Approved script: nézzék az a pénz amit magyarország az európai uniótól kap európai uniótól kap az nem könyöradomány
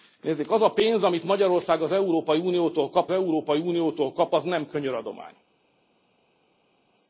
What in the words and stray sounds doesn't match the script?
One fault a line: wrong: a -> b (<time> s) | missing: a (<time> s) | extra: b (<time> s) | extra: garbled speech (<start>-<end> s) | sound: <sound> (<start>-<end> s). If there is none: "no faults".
no faults